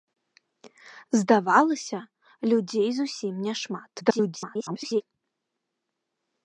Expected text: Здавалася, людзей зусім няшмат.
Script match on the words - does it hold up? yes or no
no